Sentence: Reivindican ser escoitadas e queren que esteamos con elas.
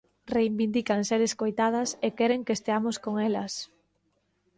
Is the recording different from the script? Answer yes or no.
no